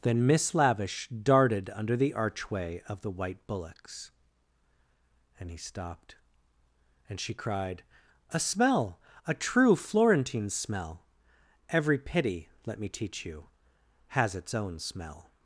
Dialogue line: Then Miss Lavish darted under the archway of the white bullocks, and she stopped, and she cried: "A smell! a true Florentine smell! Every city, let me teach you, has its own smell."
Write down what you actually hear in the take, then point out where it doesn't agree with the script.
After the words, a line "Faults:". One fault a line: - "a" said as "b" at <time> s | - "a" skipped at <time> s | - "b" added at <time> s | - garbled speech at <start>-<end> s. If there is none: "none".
Then Miss Lavish darted under the archway of the white bullocks, and he stopped, and she cried: "A smell! a true Florentine smell! Every pity, let me teach you, has its own smell."
Faults:
- "she" said as "he" at 5.5 s
- "city" said as "pity" at 12.0 s